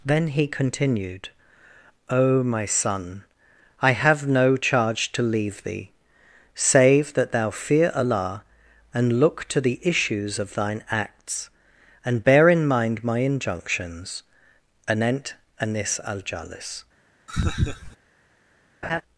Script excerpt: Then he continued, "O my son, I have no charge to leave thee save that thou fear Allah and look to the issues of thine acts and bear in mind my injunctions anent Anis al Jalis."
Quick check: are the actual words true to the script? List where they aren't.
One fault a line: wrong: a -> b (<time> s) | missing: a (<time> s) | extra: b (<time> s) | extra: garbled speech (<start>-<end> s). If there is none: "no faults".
no faults